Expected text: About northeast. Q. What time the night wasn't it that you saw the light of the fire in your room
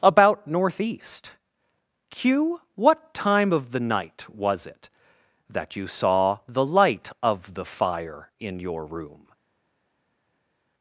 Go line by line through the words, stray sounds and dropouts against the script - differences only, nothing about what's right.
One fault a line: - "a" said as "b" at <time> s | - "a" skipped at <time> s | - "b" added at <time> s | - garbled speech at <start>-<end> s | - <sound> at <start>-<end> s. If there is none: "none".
- "of" added at 3.5 s
- "wasn't" said as "was" at 4.3 s